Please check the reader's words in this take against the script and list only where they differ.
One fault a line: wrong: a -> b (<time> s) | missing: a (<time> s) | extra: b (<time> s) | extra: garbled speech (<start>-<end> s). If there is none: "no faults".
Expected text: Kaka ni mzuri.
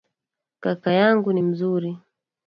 extra: yangu (0.9 s)